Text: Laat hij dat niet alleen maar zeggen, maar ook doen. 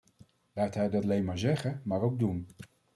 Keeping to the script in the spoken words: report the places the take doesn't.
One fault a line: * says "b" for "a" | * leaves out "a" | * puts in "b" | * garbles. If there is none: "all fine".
* leaves out "niet"